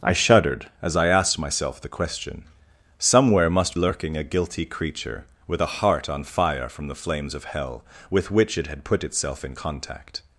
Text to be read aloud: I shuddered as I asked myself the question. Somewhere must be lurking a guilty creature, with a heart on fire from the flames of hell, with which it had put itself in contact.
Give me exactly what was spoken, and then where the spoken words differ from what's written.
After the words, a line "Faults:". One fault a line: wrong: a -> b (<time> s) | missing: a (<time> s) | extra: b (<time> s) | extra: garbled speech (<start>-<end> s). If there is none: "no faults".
I shuddered as I asked myself the question. Somewhere must lurking a guilty creature, with a heart on fire from the flames of hell, with which it had put itself in contact.
Faults:
missing: be (3.8 s)